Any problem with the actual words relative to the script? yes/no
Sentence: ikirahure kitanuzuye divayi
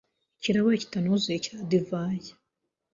yes